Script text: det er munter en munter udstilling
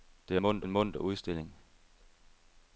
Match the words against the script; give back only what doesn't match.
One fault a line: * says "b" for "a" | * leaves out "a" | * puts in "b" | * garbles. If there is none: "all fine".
all fine